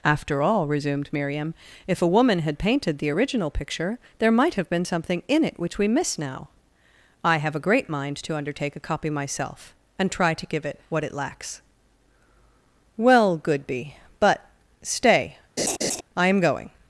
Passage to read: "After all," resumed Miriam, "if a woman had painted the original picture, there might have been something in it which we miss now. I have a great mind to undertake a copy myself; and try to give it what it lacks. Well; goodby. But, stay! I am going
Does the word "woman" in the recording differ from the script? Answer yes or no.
no